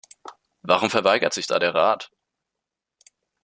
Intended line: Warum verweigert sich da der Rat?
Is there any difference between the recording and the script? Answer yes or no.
no